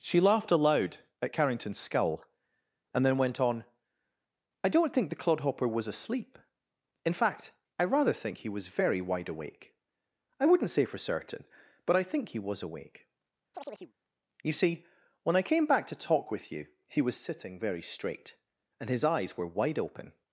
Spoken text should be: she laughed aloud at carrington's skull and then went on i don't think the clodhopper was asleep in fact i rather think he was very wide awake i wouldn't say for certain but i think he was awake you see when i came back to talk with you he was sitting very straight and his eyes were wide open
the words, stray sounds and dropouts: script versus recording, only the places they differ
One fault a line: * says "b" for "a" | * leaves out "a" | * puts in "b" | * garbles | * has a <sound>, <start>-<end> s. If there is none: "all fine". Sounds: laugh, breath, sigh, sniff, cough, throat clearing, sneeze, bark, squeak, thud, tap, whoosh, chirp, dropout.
* has a chirp, 13.5-13.9 s